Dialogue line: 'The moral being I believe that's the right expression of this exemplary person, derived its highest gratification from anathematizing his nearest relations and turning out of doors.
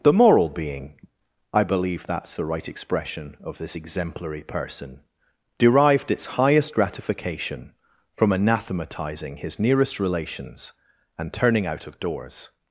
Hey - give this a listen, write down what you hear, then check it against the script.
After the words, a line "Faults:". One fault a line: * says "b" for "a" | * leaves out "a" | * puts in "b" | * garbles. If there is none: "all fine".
'The moral being I believe that's the right expression of this exemplary person, derived its highest gratification from anathematizing his nearest relations and turning out of doors.
Faults:
all fine